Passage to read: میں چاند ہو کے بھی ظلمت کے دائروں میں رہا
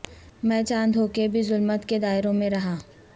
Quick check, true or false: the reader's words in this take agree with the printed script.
true